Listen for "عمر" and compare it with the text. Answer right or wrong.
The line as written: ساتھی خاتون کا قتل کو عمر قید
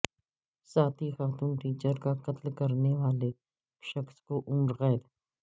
right